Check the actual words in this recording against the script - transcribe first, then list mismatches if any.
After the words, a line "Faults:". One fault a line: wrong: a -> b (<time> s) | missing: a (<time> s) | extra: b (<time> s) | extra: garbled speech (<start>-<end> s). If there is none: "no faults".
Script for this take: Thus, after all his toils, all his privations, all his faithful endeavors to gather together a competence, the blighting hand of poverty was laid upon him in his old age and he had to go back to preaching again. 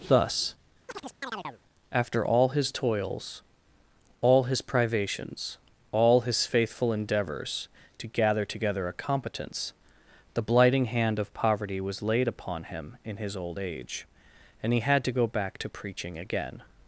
Thus, after all his toils, all his privations, all his faithful endeavors to gather together a competence, the blighting hand of poverty was laid upon him in his old age and he had to go back to preaching again.
Faults:
no faults